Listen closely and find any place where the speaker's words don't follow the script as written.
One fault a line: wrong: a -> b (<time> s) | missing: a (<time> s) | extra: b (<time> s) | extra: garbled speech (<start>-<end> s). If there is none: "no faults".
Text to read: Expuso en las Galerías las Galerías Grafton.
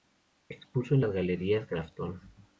missing: las Galerías (1.7 s)